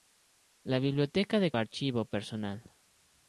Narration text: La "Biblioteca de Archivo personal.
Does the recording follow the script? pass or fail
pass